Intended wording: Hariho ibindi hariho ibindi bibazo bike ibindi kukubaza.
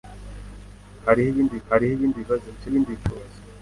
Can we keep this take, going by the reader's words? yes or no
yes